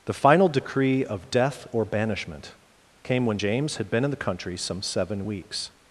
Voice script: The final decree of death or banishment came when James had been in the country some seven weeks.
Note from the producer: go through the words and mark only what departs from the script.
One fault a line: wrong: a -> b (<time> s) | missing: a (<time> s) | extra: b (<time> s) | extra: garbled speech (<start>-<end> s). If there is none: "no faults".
no faults